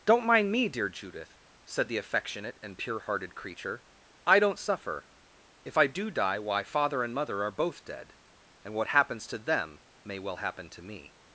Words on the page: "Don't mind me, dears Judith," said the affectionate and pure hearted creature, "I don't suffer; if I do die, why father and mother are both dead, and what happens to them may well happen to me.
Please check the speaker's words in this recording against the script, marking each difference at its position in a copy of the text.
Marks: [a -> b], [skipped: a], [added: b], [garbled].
"Don't mind me, [dears -> dear] Judith," said the affectionate and pure hearted creature, "I don't suffer; if I do die, why father and mother are both dead, and what happens to them may well happen to me.